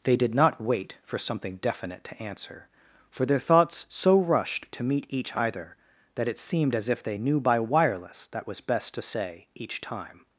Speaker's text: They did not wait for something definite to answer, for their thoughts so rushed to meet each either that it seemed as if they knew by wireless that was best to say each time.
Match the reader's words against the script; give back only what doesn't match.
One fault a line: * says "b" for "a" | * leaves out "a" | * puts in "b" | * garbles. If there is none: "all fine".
all fine